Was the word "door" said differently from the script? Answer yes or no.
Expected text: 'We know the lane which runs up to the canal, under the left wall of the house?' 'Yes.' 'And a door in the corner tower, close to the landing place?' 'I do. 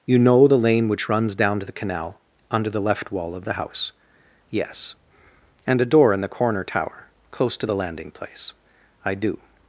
no